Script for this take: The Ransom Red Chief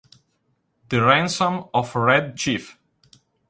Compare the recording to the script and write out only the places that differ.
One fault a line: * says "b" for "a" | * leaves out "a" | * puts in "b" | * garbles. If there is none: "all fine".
* puts in "of"